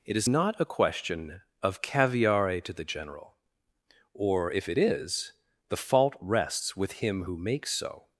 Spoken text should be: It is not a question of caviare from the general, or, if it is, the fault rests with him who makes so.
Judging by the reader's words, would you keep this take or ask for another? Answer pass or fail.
fail